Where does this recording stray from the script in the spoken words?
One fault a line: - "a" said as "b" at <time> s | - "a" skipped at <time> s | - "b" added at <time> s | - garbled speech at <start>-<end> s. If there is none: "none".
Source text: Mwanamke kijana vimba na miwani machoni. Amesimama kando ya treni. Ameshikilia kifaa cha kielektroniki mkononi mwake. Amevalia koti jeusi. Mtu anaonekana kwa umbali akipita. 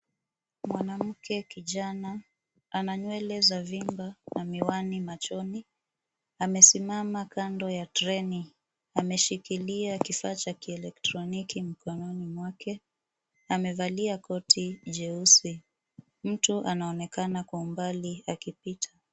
- "ana nywele za" added at 2.7 s